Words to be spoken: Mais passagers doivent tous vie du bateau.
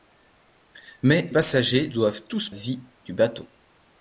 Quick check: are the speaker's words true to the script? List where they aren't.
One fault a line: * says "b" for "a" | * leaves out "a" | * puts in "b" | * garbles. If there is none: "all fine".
all fine